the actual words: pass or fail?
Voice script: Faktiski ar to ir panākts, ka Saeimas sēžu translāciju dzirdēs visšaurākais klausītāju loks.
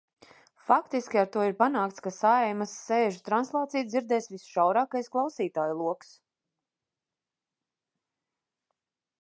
pass